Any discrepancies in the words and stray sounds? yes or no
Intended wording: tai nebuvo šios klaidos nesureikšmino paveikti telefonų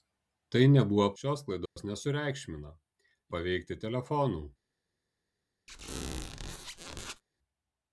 yes